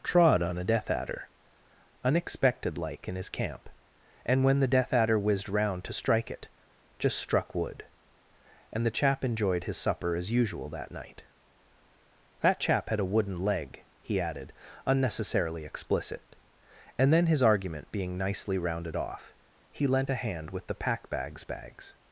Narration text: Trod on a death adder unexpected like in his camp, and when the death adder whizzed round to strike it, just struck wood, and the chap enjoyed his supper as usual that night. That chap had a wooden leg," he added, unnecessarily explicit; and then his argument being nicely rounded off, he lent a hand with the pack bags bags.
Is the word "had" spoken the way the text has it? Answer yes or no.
yes